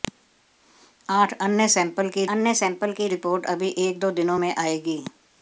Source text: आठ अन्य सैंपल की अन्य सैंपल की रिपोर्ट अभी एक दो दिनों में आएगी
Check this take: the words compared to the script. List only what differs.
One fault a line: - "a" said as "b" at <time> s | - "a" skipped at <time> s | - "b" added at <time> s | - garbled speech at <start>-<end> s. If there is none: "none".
none